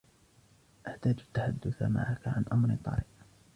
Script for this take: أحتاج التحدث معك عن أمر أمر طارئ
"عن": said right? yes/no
yes